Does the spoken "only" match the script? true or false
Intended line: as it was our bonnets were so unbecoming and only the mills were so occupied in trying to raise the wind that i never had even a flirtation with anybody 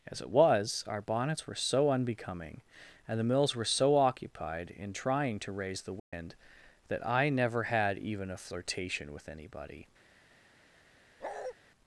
false